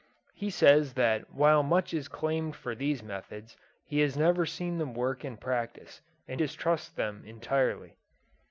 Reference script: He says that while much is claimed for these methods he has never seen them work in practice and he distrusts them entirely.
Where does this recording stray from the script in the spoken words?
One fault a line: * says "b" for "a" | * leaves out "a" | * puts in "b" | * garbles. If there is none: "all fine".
* leaves out "he"